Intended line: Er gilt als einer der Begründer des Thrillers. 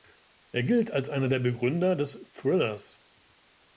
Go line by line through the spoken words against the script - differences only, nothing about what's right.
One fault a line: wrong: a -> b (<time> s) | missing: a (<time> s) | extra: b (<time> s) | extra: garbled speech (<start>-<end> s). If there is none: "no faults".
no faults